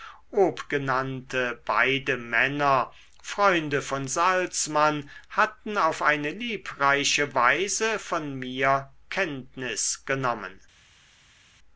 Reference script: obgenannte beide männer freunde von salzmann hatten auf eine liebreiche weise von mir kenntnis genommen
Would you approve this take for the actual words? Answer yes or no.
yes